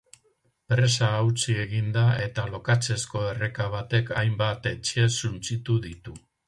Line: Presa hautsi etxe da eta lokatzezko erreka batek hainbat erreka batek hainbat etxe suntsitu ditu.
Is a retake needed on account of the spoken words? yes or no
yes